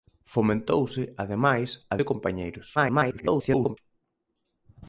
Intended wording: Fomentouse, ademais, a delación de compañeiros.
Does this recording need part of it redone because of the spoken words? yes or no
yes